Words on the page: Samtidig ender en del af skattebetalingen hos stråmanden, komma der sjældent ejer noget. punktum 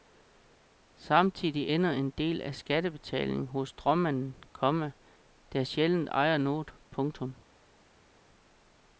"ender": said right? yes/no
yes